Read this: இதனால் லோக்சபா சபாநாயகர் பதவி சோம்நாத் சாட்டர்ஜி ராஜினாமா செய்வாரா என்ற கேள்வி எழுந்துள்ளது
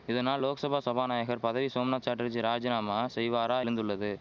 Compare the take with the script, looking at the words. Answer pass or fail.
fail